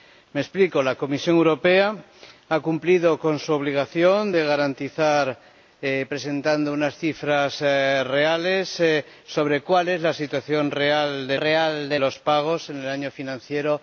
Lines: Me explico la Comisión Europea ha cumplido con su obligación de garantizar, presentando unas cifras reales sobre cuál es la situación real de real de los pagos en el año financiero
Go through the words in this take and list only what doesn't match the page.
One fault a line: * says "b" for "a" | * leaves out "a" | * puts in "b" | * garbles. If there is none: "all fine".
all fine